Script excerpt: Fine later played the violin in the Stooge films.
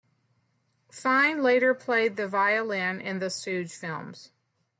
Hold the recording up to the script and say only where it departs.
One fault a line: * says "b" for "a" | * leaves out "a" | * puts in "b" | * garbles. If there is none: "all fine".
all fine